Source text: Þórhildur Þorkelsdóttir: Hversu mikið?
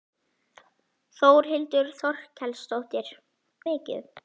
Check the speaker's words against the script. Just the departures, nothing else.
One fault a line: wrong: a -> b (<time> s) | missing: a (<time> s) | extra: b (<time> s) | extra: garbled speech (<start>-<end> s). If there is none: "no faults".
missing: Hversu (3.1 s)